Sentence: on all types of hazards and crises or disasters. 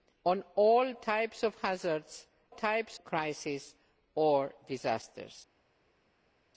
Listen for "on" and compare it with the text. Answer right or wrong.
right